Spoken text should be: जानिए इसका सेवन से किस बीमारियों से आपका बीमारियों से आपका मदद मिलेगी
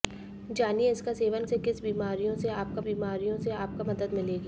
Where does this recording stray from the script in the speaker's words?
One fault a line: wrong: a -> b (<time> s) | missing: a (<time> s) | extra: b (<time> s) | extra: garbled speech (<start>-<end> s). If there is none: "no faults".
no faults